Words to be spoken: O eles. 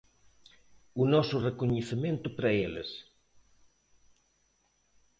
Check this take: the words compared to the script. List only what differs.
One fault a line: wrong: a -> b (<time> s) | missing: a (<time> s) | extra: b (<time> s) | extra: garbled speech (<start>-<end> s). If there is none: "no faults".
extra: noso recoñecemento para (1.1 s)